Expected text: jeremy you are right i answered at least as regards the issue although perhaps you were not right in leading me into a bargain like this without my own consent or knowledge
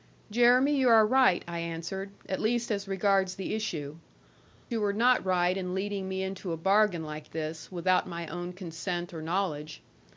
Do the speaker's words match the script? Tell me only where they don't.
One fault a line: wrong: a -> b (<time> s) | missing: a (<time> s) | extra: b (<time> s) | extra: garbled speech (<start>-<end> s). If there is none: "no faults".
missing: although perhaps (4.0 s)